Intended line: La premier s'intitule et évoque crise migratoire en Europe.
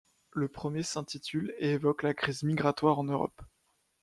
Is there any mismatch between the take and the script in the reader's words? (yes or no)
yes